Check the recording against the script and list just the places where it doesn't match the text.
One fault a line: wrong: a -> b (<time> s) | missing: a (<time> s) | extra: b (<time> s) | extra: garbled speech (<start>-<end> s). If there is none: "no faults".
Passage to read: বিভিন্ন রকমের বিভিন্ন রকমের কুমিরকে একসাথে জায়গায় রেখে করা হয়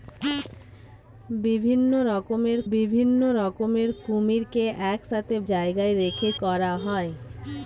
no faults